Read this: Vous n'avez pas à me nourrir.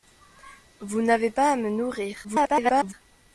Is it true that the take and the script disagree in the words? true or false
true